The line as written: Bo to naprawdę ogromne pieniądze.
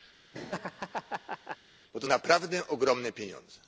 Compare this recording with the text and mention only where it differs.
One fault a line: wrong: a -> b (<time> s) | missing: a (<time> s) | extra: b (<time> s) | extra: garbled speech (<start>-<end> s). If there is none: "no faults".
no faults